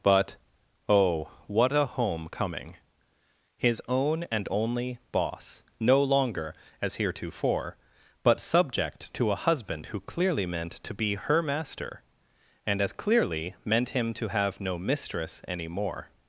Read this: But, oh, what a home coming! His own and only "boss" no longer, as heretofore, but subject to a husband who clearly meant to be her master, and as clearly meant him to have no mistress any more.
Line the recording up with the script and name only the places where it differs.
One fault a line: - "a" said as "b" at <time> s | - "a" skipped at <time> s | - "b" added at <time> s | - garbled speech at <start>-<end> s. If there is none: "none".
none